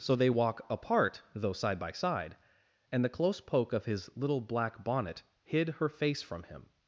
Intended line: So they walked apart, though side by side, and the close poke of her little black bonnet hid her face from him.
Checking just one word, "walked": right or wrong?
wrong